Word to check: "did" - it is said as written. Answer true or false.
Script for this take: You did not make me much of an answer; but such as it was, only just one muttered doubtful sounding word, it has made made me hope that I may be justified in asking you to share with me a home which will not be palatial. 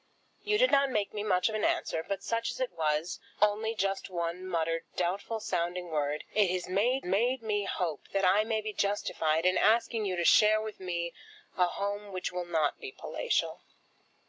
true